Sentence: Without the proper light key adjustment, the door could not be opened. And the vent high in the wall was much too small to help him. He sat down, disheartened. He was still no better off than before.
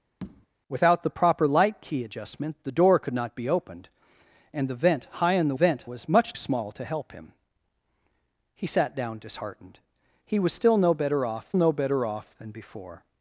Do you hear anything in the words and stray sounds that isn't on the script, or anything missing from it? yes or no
yes